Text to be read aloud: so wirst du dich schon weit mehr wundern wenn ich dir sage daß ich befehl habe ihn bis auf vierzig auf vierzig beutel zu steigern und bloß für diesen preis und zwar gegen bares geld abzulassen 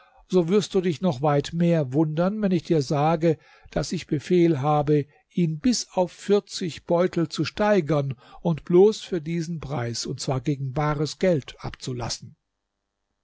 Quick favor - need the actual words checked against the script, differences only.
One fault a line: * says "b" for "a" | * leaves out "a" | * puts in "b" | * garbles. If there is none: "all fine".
* says "noch" for "schon"
* leaves out "auf vierzig"